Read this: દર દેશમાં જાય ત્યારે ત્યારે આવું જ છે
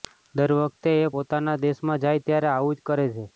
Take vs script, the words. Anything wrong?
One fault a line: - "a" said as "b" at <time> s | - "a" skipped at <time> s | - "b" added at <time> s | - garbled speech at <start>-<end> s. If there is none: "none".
- "વખતે એ પોતાના" added at 0.6 s
- "ત્યારે" skipped at 2.5 s
- "કરે" added at 2.9 s